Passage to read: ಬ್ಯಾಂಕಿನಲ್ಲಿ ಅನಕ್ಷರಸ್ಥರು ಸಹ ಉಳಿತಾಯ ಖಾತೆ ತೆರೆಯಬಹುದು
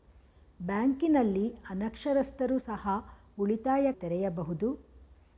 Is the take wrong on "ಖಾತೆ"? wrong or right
wrong